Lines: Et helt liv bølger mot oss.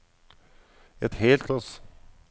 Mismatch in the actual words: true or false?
true